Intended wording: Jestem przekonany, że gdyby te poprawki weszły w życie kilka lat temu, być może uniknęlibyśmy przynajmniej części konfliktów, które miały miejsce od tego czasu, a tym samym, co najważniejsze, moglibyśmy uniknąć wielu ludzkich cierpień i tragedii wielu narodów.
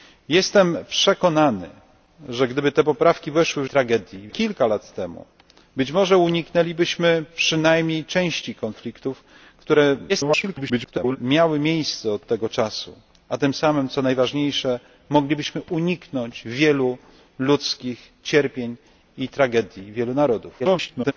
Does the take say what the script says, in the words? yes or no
no